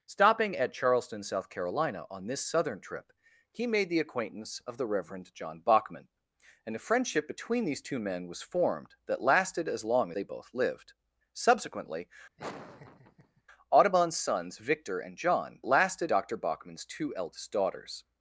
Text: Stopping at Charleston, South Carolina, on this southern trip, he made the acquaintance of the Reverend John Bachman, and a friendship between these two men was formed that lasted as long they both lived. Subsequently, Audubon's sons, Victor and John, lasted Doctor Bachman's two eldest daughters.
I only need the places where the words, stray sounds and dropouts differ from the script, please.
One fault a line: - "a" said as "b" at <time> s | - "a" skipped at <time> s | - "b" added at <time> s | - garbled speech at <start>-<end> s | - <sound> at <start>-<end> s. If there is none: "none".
- laugh at 12.4-13.4 s